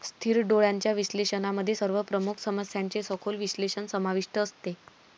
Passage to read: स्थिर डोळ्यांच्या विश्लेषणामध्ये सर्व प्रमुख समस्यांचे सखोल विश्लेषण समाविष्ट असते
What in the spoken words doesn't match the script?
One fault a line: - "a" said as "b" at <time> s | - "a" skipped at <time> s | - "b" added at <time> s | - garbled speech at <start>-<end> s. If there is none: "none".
none